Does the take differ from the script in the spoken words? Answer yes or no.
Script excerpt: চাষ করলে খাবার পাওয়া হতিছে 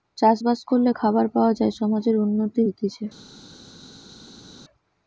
yes